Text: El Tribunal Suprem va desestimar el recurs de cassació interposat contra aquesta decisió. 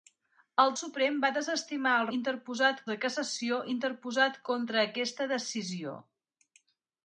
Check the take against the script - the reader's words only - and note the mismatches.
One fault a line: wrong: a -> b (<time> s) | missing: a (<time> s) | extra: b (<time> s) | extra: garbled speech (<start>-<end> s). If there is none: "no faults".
missing: Tribunal (0.7 s)
wrong: recurs -> interposat (2.2 s)